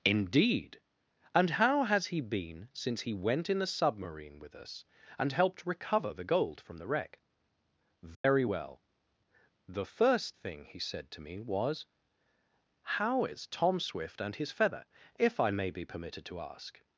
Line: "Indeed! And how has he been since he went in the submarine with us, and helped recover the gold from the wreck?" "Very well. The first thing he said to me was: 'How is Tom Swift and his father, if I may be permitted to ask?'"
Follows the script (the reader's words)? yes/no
no